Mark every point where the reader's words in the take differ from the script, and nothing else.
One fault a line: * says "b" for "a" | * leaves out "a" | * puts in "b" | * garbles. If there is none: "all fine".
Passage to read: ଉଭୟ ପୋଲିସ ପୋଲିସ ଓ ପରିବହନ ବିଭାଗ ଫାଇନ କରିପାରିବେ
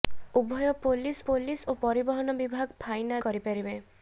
all fine